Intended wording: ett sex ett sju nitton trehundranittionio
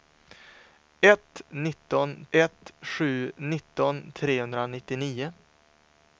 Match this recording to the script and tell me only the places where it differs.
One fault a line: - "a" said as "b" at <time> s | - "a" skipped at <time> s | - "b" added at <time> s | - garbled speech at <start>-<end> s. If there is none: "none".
- "sex" said as "nitton" at 1.5 s